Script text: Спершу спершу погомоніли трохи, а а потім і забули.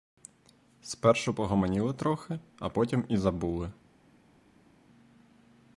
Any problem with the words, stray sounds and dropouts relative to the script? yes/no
yes